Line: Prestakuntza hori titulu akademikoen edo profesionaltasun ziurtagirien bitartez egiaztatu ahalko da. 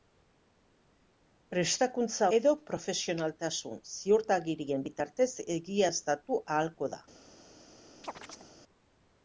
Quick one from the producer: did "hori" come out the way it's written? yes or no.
no